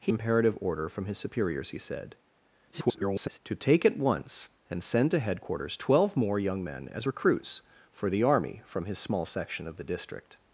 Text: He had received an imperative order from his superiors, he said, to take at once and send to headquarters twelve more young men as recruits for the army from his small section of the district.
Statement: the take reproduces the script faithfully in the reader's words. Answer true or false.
false